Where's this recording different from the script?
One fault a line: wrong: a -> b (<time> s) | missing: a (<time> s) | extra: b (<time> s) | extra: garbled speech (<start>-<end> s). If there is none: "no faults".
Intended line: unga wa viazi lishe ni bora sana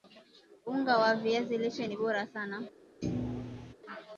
no faults